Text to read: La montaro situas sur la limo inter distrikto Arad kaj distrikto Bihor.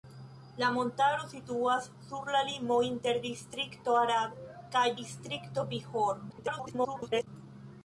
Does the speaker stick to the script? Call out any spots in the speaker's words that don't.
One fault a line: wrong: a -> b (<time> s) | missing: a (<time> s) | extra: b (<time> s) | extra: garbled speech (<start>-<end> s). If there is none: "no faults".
extra: garbled speech (6.3-7.3 s)